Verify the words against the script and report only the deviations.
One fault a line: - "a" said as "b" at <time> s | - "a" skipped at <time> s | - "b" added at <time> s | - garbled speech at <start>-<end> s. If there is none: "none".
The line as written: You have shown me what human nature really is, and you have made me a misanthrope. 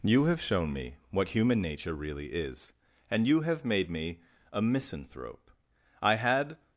- "I had" added at 6.0 s